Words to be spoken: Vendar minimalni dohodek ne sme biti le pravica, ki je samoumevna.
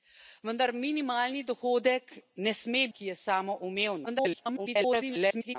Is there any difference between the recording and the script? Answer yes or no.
yes